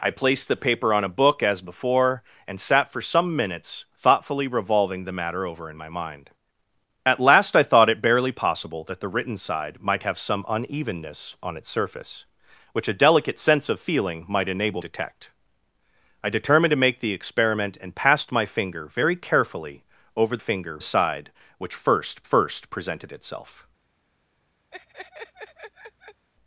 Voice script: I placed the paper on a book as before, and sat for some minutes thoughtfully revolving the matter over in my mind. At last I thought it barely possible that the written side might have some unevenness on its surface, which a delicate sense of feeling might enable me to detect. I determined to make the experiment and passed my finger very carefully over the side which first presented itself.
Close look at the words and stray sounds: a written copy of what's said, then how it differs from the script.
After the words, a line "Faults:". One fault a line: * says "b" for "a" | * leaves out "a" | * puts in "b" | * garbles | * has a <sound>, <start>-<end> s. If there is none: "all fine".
I placed the paper on a book as before, and sat for some minutes thoughtfully revolving the matter over in my mind. At last I thought it barely possible that the written side might have some unevenness on its surface, which a delicate sense of feeling might enable detect. I determined to make the experiment and passed my finger very carefully over finger side which first first presented itself.
Faults:
* leaves out "me to"
* says "finger" for "the"
* puts in "first"
* has a laugh, 24.7-26.3 s